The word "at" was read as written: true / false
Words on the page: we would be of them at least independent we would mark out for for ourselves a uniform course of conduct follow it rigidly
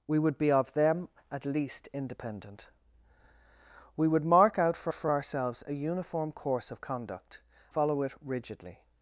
true